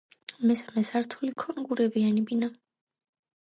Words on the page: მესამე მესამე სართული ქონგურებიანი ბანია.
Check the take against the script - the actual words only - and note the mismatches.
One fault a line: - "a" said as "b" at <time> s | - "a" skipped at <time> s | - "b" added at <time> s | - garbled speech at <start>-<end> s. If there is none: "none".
- "მესამე" skipped at 0.8 s